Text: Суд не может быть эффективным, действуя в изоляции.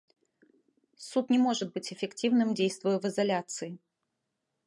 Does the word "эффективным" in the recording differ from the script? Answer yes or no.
no